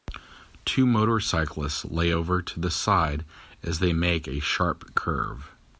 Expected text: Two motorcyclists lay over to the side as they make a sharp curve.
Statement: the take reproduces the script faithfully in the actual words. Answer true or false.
true